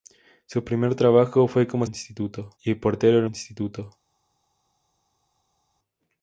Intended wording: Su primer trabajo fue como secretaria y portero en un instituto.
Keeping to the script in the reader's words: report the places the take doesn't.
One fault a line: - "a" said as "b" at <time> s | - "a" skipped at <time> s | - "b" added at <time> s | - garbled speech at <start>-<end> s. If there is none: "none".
- "secretaria" said as "instituto" at 1.8 s
- "un" skipped at 3.3 s